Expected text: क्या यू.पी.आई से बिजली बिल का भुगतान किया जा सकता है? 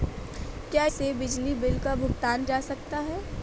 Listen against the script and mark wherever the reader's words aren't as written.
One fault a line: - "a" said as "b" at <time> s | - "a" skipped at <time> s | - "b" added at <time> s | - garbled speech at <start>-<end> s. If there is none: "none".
- "यू.पी.आई" skipped at 0.8 s
- "किया" skipped at 2.5 s